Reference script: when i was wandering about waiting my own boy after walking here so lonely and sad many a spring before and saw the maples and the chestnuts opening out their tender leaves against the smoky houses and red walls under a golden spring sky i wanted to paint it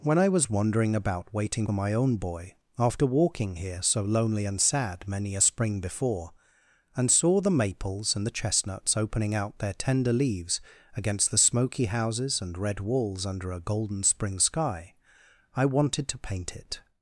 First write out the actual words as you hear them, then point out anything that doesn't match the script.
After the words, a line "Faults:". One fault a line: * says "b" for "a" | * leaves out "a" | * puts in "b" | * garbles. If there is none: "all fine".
when i was wandering about waiting my own boy after walking here so lonely and sad many a spring before and saw the maples and the chestnuts opening out their tender leaves against the smoky houses and red walls under a golden spring sky i wanted to paint it
Faults:
all fine